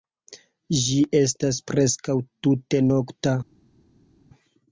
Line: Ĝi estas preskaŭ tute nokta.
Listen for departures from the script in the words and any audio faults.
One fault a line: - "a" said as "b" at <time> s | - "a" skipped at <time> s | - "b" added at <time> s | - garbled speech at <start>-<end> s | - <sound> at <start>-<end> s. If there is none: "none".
none